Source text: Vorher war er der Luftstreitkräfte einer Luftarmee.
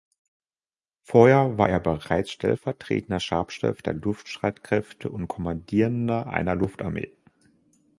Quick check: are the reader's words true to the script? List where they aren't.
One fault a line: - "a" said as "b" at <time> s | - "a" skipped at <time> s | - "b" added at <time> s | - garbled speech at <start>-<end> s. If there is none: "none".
- "bereits stellvertretender Stabschef" added at 1.8 s
- "und Kommandierender" added at 5.1 s